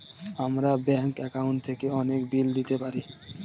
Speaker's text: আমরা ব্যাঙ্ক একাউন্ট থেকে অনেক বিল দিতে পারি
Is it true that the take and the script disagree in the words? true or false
false